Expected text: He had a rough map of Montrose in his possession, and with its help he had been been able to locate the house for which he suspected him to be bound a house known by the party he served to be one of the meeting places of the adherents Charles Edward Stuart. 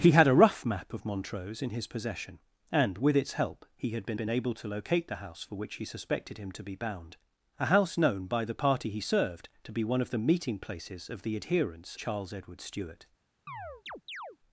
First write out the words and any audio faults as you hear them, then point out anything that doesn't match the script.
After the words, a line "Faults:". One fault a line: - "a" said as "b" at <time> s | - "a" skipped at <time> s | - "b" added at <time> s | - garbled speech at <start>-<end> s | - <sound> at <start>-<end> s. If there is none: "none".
He had a rough map of Montrose in his possession, and with its help he had been been able to locate the house for which he suspected him to be bound a house known by the party he served to be one of the meeting places of the adherents Charles Edward Stuart.
Faults:
- chirp at 13.5-14.4 s